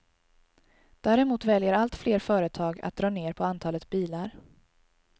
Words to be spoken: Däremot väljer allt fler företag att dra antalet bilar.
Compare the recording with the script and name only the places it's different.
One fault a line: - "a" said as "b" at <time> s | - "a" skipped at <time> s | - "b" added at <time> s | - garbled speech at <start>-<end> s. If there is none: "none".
- "ner på" added at 3.1 s